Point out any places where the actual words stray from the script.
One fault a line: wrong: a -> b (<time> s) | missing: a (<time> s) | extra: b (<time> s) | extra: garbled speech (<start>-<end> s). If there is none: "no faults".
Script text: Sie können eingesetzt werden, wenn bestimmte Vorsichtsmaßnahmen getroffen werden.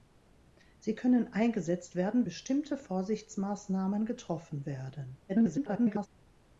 missing: wenn (2.2 s)
extra: garbled speech (5.3-6.1 s)